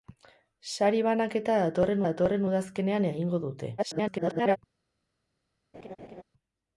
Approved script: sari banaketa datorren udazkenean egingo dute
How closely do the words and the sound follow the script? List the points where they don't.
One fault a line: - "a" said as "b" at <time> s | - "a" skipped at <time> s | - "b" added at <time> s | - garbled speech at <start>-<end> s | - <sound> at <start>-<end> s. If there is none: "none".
- "datorren" added at 2.1 s
- garbled speech at 3.8-4.6 s
- laugh at 5.7-6.2 s